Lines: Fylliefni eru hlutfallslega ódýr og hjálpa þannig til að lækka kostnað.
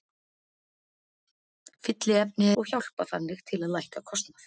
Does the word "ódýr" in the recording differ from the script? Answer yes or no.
yes